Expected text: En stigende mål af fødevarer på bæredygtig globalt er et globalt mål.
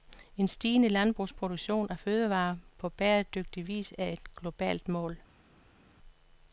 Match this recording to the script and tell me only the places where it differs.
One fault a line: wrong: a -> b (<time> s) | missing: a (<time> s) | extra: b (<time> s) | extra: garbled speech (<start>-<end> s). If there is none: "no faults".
wrong: mål -> landbrugsproduktion (0.9 s)
wrong: globalt -> vis (3.7 s)